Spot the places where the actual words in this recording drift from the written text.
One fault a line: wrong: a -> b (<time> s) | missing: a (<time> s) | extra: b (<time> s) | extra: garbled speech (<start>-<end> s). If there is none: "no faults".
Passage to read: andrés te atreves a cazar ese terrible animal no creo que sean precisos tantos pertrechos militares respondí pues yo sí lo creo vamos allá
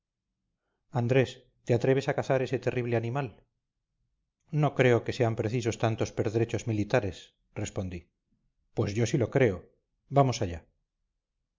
no faults